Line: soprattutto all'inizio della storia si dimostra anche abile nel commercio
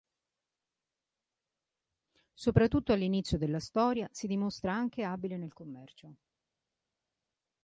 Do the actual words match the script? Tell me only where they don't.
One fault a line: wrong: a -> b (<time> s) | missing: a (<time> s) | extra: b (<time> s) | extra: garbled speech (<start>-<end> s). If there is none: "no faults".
no faults